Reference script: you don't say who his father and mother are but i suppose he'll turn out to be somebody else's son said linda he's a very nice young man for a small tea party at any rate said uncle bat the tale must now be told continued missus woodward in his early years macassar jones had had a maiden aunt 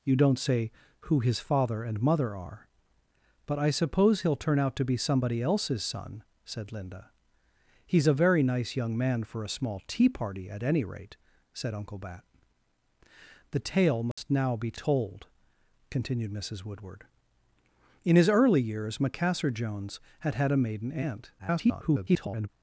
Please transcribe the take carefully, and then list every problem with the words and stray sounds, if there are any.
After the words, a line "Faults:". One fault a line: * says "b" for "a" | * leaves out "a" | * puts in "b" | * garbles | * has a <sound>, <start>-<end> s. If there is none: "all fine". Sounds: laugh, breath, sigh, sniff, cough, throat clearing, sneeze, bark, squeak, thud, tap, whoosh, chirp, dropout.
you don't say who his father and mother are but i suppose he'll turn out to be somebody else's son said linda he's a very nice young man for a small tea party at any rate said uncle bat the tale must now be told continued missus woodward in his early years macassar jones had had a maiden aunt [garbled]
Faults:
* has a dropout, 14.1-14.2 s
* garbles